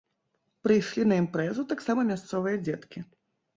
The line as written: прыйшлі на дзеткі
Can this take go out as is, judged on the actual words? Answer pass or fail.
fail